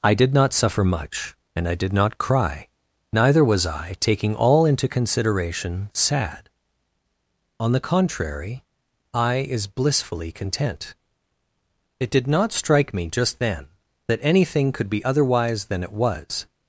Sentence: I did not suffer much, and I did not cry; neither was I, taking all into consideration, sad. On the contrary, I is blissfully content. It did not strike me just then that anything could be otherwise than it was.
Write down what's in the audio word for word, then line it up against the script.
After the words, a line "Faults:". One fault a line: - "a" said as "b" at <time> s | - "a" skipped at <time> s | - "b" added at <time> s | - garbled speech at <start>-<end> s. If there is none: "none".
I did not suffer much, and I did not cry; neither was I, taking all into consideration, sad. On the contrary, I is blissfully content. It did not strike me just then that anything could be otherwise than it was.
Faults:
none